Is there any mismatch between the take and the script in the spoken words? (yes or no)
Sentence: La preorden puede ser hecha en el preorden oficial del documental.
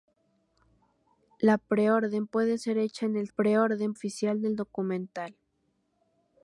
no